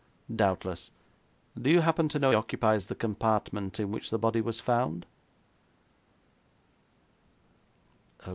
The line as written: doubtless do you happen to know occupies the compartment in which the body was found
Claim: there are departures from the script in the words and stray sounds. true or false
false